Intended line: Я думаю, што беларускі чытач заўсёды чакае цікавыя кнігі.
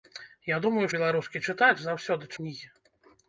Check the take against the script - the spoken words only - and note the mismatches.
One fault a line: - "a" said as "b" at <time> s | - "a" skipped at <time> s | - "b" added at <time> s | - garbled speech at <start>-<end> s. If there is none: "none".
- "што" skipped at 0.8 s
- "чакае цікавыя" skipped at 2.3 s